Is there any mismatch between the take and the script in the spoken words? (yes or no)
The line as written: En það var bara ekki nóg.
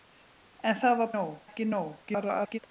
yes